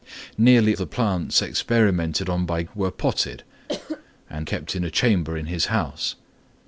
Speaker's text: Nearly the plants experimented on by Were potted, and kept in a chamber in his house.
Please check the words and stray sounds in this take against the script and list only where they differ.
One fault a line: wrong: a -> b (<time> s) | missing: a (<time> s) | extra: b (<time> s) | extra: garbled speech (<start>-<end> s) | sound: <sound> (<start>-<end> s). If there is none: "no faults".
sound: cough (3.7-4.0 s)